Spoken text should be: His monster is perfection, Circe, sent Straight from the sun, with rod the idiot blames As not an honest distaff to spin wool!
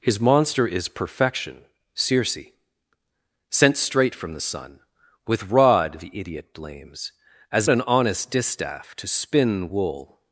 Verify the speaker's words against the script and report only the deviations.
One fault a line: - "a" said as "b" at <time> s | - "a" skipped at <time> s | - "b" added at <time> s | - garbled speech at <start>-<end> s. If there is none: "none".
- "not" skipped at 7.7 s